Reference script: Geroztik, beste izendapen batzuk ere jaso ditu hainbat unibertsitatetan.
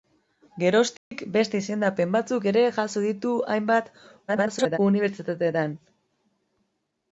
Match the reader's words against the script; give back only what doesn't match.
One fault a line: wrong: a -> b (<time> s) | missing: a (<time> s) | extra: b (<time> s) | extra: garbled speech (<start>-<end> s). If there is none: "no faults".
extra: garbled speech (4.3-4.8 s)